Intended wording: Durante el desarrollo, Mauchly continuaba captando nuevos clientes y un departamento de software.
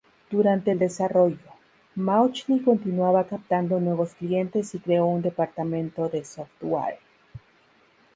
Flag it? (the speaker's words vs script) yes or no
yes